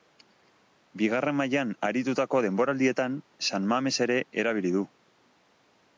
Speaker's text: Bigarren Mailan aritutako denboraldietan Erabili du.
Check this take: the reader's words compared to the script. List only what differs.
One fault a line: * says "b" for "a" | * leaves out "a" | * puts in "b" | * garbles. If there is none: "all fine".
* puts in "San Mames ere"